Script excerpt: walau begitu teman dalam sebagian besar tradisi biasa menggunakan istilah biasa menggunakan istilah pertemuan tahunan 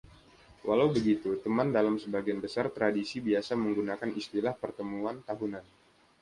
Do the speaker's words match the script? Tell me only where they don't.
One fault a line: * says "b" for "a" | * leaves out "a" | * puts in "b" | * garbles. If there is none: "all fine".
* leaves out "biasa menggunakan istilah"